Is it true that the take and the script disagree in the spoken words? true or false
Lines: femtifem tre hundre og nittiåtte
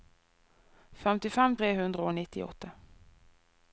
false